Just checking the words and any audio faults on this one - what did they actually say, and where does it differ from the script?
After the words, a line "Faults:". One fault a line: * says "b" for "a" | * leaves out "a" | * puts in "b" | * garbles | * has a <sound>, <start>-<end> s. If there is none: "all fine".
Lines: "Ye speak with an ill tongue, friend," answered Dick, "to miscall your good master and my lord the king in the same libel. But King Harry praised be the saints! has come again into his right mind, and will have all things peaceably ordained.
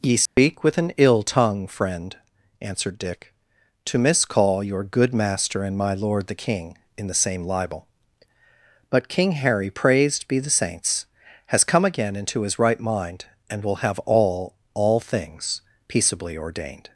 "Ye speak with an ill tongue, friend," answered Dick, "to miscall your good master and my lord the king in the same libel. But King Harry praised be the saints! has come again into his right mind, and will have all all things peaceably ordained.
Faults:
* has a dropout, 0.3-0.4 s
* puts in "all"